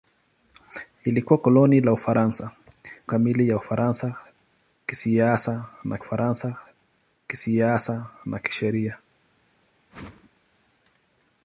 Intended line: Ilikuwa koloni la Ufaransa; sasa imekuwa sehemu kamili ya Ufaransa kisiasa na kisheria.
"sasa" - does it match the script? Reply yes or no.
no